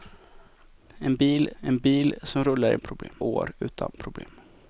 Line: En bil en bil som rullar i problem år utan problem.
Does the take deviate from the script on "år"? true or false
false